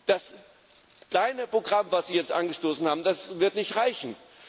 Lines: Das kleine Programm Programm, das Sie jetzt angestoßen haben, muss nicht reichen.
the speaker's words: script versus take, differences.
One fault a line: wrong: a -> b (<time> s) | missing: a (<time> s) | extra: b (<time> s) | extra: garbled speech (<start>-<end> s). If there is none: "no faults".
missing: Programm (1.9 s)
wrong: muss -> wird (3.0 s)